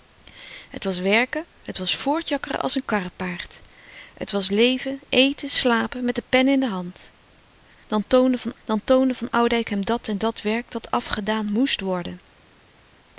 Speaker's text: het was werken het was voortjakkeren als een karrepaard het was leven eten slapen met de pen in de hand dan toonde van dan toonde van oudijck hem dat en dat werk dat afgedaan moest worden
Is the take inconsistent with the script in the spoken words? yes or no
no